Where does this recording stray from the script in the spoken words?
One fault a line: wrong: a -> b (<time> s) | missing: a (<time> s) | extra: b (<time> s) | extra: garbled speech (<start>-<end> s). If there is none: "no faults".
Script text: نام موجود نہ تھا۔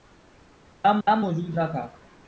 extra: نام (1.1 s)